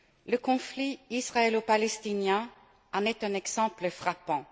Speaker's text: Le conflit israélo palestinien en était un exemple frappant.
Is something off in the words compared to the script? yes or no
yes